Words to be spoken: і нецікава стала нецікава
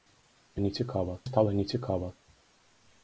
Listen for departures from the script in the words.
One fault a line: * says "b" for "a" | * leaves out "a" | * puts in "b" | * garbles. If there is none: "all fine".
all fine